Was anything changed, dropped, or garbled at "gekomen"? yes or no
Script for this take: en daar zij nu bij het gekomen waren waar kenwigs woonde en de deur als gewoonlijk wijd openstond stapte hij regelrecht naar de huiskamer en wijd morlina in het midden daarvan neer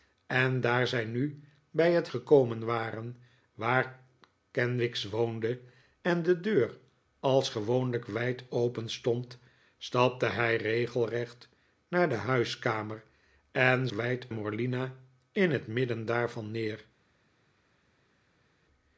no